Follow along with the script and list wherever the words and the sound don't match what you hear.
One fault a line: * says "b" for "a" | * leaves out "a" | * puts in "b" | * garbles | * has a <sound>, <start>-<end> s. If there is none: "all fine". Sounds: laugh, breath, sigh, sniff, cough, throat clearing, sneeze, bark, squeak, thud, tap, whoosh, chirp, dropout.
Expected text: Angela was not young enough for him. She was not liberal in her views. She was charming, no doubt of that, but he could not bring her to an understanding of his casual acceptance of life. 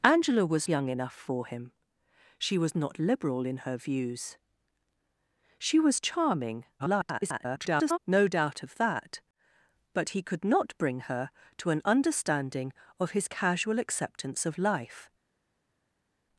* leaves out "not"
* garbles